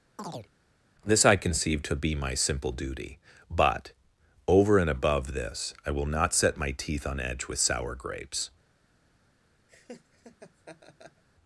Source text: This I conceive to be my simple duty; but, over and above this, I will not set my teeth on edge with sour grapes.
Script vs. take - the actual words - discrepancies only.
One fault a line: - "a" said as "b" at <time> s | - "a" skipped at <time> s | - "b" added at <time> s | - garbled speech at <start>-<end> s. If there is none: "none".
none